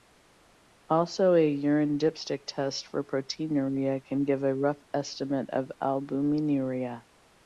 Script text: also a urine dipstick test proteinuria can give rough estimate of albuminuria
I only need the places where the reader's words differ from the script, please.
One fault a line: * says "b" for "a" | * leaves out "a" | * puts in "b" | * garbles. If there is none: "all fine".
* puts in "for"
* puts in "a"